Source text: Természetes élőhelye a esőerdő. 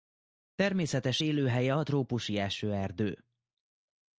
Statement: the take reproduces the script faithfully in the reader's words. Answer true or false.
false